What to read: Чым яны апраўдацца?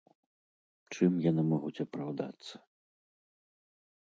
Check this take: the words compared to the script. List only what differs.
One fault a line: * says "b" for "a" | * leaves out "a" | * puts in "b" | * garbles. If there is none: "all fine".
* puts in "могуць"